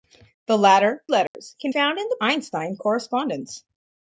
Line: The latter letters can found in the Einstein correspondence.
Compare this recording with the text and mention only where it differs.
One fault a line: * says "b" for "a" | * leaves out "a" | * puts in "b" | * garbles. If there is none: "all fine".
all fine